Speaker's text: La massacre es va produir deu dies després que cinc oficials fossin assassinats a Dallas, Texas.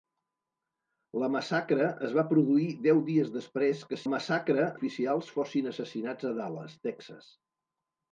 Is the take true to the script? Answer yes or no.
no